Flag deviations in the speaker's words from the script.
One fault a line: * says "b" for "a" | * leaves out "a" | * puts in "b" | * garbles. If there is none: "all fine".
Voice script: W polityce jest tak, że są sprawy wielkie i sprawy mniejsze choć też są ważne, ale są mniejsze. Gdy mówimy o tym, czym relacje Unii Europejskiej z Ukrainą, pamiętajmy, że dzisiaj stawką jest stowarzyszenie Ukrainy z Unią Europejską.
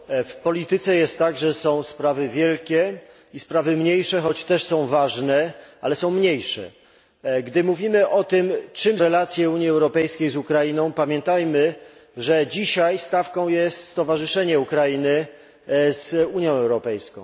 all fine